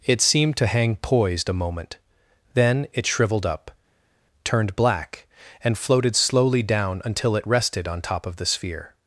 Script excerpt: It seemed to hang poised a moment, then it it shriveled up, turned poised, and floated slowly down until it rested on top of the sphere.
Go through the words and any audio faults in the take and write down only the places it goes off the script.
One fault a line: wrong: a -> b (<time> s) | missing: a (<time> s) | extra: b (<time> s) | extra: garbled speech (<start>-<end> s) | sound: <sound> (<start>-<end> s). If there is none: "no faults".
missing: it (3.0 s)
wrong: poised -> black (4.8 s)